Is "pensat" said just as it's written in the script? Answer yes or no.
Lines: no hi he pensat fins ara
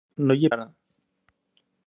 no